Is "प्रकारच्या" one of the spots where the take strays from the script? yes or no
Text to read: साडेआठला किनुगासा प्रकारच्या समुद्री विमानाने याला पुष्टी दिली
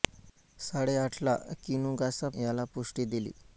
yes